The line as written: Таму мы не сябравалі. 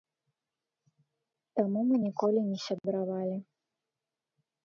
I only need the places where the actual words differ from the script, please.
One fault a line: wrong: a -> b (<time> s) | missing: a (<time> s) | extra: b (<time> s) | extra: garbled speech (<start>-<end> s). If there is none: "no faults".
extra: ніколі (2.1 s)